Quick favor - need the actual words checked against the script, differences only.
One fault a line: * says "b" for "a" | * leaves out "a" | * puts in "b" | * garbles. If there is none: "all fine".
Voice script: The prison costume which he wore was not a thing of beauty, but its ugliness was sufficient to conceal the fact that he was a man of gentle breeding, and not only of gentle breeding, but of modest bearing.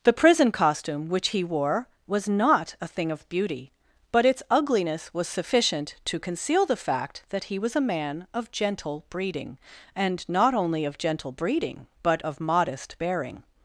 all fine